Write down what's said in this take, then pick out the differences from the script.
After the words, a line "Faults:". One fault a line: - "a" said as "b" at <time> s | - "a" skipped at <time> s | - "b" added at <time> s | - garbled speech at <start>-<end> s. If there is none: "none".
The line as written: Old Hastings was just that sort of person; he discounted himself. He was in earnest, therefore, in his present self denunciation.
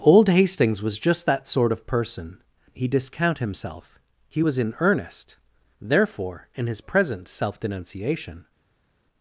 Old Hastings was just that sort of person; he discount himself. He was in earnest, therefore, in his present self denunciation.
Faults:
- "discounted" said as "discount" at 2.9 s